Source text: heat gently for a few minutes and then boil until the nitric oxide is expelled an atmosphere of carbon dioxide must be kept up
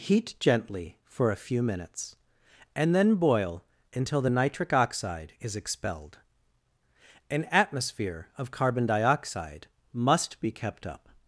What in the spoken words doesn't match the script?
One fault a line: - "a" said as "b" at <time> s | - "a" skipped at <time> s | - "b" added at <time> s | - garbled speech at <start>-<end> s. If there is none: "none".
none